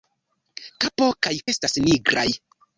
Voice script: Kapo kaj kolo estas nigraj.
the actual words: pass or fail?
fail